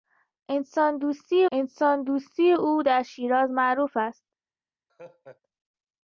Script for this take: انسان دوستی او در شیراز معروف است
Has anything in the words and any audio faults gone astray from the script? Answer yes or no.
yes